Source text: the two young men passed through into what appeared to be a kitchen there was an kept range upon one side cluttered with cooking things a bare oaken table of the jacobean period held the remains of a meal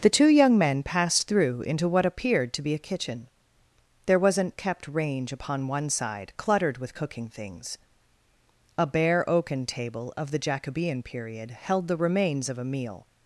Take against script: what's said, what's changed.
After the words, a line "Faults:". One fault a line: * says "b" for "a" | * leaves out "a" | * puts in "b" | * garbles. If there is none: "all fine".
the two young men passed through into what appeared to be a kitchen there was an kept range upon one side cluttered with cooking things a bare oaken table of the jacobean period held the remains of a meal
Faults:
all fine